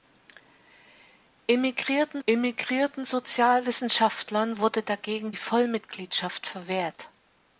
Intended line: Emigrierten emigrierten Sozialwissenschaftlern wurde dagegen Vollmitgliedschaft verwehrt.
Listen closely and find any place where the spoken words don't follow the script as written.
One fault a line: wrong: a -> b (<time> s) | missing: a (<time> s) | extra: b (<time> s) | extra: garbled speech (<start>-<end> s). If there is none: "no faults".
no faults